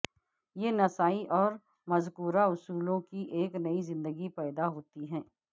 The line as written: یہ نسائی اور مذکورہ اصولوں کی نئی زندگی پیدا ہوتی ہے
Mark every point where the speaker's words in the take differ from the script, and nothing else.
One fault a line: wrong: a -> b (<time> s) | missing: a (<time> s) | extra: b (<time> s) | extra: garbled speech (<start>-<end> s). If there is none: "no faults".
extra: ایک (3.3 s)